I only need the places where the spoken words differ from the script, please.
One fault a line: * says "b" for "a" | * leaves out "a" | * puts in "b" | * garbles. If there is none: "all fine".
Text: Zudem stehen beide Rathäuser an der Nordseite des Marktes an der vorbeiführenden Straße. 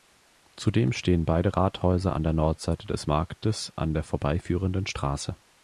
all fine